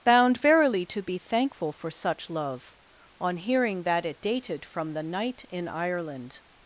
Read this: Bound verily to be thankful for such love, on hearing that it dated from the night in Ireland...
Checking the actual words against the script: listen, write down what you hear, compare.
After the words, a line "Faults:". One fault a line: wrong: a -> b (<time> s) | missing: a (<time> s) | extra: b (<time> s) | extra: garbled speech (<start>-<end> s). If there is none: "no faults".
Bound verily to be thankful for such love, on hearing that it dated from the night in Ireland...
Faults:
no faults